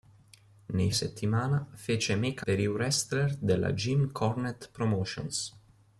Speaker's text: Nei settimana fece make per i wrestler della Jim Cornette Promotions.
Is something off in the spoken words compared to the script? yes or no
no